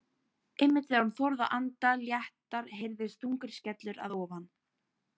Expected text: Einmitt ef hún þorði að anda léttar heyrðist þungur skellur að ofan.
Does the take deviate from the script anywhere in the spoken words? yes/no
yes